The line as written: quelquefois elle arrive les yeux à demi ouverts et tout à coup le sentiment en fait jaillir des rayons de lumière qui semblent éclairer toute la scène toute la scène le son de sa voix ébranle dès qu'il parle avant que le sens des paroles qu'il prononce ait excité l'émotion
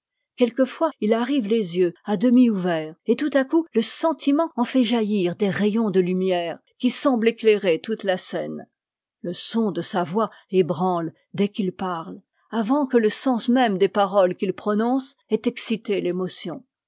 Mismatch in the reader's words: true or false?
true